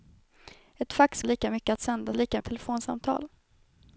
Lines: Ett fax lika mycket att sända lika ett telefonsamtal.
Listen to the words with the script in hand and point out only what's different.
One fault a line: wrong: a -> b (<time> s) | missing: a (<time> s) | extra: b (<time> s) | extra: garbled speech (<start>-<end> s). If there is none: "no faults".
no faults